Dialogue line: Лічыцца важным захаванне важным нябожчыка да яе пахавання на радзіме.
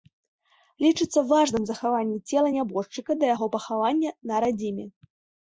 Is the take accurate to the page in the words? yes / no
no